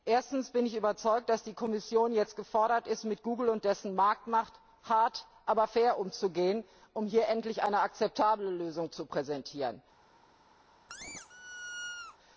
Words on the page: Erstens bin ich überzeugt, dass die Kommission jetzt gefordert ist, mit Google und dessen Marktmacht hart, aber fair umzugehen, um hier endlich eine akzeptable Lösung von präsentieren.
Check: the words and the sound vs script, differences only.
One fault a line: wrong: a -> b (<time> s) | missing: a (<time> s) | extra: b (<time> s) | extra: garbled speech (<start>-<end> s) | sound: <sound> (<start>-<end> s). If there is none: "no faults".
wrong: von -> zu (8.9 s)
sound: squeak (10.9-12.2 s)